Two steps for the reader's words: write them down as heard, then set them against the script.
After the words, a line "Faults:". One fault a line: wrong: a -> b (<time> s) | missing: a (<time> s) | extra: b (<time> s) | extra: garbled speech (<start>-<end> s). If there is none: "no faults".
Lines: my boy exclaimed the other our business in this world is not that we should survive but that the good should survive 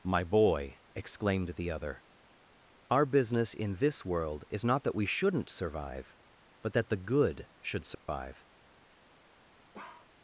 my boy exclaimed the other our business in this world is not that we shouldn't survive but that the good should survive
Faults:
wrong: should -> shouldn't (5.0 s)